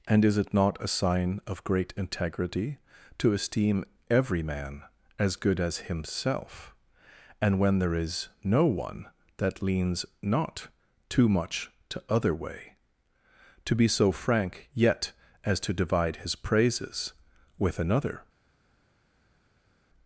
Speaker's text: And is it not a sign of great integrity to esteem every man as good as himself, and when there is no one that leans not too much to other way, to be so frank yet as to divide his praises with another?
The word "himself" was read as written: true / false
true